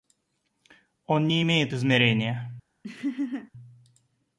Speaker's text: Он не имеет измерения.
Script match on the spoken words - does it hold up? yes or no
yes